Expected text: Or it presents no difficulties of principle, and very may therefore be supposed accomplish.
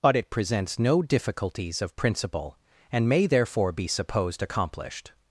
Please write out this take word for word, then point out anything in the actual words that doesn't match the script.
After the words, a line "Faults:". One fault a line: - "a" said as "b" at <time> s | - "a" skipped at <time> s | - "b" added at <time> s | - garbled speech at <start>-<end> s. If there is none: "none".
But it presents no difficulties of principle, and may therefore be supposed accomplished.
Faults:
- "Or" said as "But" at 0.0 s
- "very" skipped at 3.1 s
- "accomplish" said as "accomplished" at 4.4 s